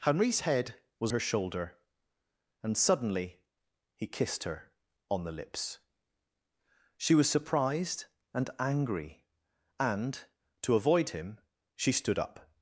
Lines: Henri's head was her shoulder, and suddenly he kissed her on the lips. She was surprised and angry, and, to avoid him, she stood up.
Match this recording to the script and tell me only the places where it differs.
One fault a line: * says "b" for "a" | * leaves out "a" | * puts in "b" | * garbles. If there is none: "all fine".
all fine